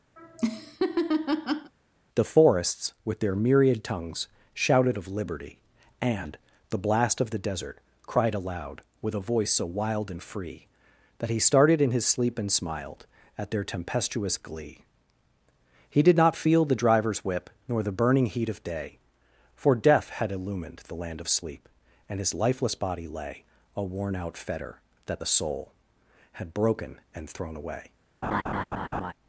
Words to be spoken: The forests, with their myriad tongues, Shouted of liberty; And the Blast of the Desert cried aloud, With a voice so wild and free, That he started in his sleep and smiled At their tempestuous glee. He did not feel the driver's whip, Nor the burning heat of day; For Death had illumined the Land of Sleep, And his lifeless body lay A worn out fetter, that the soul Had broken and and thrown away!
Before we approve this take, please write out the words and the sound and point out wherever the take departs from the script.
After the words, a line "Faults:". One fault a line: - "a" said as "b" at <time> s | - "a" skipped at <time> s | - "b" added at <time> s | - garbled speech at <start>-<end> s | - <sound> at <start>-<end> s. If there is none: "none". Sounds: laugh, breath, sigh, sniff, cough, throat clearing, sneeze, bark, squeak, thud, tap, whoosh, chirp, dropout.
The forests, with their myriad tongues, Shouted of liberty; And the Blast of the Desert cried aloud, With a voice so wild and free, That he started in his sleep and smiled At their tempestuous glee. He did not feel the driver's whip, Nor the burning heat of day; For Death had illumined the Land of Sleep, And his lifeless body lay A worn out fetter, that the soul Had broken and thrown away!
Faults:
- laugh at 0.2-1.7 s
- "and" skipped at 27.3 s
- laugh at 28.2-29.1 s